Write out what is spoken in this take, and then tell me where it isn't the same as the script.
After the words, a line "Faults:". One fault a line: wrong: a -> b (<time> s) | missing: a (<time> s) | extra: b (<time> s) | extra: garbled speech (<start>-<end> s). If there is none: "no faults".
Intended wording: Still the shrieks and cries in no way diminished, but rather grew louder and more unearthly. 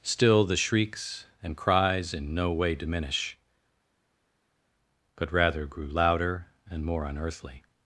Still the shrieks and cries in no way diminish, but rather grew louder and more unearthly.
Faults:
wrong: diminished -> diminish (2.8 s)